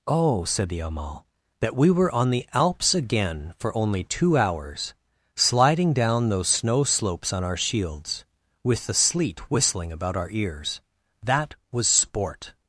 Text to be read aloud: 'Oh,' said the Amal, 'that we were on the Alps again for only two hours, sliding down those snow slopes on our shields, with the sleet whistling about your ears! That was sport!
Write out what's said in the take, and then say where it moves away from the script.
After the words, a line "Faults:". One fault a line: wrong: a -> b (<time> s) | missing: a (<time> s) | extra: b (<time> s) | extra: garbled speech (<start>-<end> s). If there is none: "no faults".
'Oh,' said the Amal, 'that we were on the Alps again for only two hours, sliding down those snow slopes on our shields, with the sleet whistling about our ears! That was sport!
Faults:
wrong: your -> our (10.2 s)